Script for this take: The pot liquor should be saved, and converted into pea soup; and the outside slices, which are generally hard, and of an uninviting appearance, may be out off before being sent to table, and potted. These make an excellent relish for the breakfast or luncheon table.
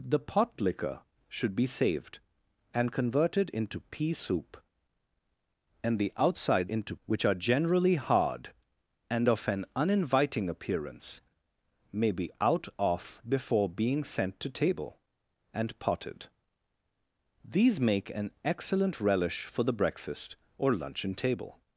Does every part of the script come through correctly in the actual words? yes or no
no